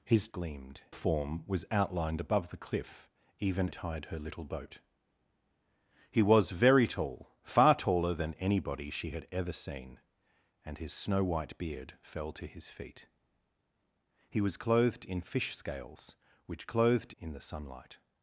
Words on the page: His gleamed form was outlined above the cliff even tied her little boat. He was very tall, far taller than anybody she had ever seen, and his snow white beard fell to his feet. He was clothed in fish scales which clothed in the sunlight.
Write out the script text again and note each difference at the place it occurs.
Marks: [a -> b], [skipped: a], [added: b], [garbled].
His gleamed form was outlined above the cliff even tied her little boat. He was very tall, far taller than anybody she had ever seen, and his snow white beard fell to his feet. He was clothed in fish scales which clothed in the sunlight.